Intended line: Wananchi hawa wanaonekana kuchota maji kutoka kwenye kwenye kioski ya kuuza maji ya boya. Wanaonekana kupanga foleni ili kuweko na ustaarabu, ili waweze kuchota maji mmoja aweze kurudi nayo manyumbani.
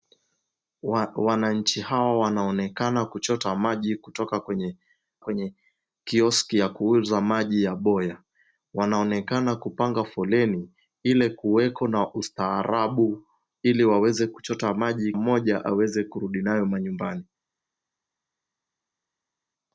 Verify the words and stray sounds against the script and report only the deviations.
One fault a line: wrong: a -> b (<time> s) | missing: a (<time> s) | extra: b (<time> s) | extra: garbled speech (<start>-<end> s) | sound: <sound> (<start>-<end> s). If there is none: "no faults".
no faults